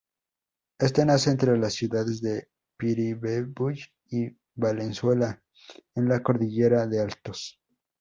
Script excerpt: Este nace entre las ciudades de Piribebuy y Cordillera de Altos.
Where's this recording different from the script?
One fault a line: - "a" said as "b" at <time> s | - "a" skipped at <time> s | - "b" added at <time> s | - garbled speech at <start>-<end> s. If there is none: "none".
- "Valenzuela en la" added at 4.6 s